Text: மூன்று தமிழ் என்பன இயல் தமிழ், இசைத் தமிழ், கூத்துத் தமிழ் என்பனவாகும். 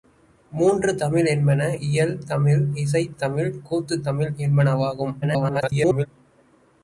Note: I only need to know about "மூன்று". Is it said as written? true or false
true